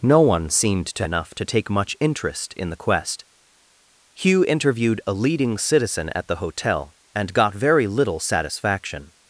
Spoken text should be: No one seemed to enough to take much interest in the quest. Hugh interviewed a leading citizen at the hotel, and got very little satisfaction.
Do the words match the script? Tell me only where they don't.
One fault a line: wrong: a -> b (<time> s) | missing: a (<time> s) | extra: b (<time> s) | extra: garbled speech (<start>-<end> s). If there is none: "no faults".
no faults